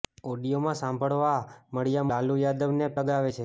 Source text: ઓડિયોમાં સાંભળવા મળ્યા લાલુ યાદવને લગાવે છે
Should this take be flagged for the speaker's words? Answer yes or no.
no